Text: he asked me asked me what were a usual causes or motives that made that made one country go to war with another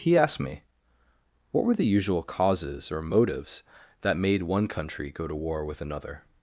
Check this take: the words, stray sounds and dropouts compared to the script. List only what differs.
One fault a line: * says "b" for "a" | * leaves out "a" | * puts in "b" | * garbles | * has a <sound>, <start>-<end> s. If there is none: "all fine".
* leaves out "asked me"
* says "the" for "a"
* leaves out "that made"